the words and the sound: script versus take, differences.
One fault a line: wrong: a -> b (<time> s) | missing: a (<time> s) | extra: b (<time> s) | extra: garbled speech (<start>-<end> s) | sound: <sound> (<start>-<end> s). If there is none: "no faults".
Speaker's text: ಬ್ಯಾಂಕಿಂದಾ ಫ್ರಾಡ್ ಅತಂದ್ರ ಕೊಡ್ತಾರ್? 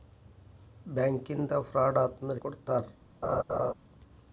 sound: laugh (3.2-3.7 s)